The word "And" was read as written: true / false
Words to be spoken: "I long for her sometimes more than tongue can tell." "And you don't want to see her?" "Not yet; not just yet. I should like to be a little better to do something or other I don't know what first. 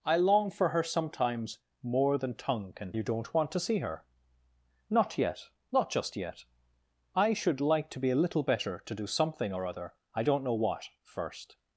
false